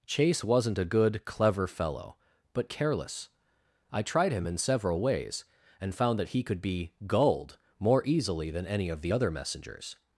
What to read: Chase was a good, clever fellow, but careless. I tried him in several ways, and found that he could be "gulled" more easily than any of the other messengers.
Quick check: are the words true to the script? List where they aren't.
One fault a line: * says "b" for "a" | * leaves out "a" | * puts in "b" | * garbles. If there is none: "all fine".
* says "wasn't" for "was"